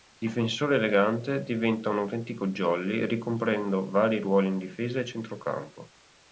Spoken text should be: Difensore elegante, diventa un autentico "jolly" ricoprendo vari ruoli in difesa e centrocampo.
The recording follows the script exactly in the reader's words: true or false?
true